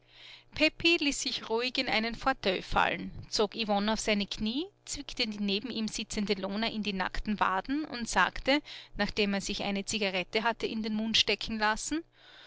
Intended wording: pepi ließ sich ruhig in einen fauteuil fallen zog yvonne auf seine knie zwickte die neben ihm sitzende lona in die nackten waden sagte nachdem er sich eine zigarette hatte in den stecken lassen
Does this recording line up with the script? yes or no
no